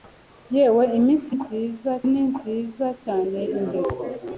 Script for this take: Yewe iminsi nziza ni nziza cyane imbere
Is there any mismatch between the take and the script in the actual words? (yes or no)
no